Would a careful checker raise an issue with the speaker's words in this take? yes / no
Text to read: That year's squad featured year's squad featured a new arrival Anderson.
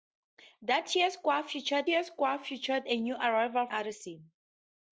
no